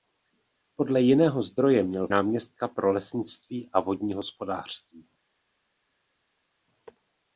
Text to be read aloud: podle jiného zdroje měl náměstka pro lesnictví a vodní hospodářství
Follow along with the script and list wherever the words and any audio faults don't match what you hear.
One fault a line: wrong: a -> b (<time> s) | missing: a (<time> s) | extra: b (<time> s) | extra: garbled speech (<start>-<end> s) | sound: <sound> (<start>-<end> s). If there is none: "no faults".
no faults